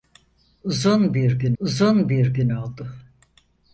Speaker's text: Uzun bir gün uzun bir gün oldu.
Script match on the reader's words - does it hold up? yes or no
yes